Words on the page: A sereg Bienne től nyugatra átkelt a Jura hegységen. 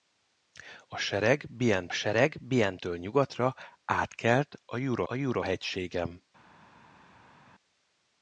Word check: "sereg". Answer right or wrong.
right